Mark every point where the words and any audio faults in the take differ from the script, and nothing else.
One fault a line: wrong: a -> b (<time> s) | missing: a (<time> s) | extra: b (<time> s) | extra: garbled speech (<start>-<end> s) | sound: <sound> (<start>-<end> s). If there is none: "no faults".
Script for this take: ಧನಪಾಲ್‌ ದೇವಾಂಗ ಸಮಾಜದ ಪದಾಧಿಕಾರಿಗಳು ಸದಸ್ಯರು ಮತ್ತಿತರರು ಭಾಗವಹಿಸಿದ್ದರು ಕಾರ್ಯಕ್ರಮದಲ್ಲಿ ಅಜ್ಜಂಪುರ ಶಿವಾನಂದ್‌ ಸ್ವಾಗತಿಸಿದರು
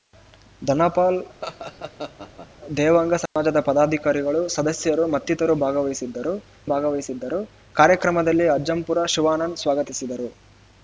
sound: laugh (1.4-2.5 s)
sound: dropout (3.3-3.4 s)
extra: ಭಾಗವಹಿಸಿದ್ದರು (6.7 s)